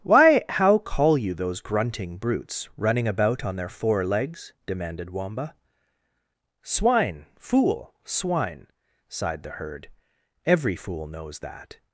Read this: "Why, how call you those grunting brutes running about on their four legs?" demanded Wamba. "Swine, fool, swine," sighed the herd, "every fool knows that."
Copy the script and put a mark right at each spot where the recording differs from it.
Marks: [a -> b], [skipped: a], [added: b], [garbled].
"Why, how call you those grunting brutes running about on their four legs?" demanded Wamba. "Swine, fool, swine," sighed the herd, "every fool knows that."